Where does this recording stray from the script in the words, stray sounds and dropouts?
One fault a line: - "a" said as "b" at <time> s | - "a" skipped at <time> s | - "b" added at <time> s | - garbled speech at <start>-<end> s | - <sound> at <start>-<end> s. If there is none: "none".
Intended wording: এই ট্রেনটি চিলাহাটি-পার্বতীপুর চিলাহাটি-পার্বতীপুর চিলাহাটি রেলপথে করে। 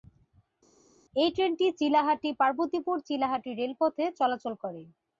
- "চিলাহাটি-পার্বতীপুর" skipped at 3.0 s
- "চলাচল" added at 4.2 s